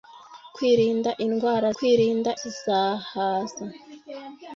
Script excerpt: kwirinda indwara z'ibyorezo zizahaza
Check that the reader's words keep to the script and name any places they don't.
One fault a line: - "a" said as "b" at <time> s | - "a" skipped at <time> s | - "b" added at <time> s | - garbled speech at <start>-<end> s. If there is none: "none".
- "z'ibyorezo" said as "kwirinda" at 1.8 s